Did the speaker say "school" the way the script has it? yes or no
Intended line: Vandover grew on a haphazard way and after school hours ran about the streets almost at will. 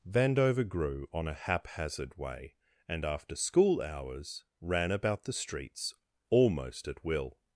yes